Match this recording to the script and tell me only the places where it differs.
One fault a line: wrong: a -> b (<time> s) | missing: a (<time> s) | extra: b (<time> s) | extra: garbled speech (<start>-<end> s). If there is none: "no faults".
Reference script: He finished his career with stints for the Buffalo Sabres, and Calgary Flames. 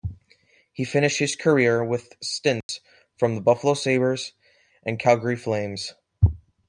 no faults